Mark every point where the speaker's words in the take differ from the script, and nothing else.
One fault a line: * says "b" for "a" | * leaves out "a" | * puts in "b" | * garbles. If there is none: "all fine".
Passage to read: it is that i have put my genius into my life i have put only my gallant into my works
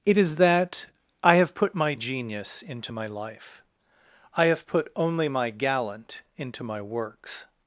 all fine